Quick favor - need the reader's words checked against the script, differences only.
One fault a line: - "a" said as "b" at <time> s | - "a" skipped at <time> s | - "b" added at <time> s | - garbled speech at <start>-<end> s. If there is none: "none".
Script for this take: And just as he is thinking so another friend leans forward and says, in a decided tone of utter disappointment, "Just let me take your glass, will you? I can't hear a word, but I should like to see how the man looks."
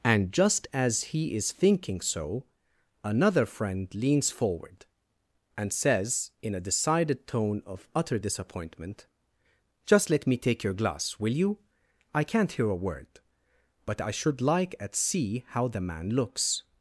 - "to" said as "at" at 14.8 s